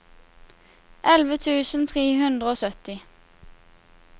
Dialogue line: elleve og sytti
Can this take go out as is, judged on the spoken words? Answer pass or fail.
fail